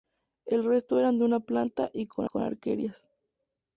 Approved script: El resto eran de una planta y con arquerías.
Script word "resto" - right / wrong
right